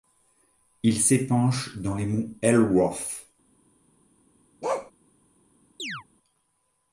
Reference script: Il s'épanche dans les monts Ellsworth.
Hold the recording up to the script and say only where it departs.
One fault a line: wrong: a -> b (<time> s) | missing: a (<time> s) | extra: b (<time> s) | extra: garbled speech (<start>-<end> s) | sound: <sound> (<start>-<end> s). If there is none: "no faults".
sound: bark (4.6-4.9 s)
sound: chirp (5.8-6.0 s)